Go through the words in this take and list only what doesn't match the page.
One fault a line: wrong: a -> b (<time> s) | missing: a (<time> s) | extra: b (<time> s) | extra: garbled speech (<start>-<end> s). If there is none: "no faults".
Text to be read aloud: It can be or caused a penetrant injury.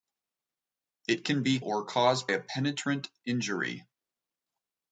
no faults